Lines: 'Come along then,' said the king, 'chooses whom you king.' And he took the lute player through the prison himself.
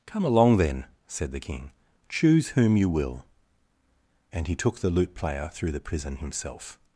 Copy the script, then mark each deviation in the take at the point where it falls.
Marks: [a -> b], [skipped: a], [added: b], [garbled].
'Come along then,' said the king, ['chooses -> choose] whom you [king.' -> will] And he took the lute player through the prison himself.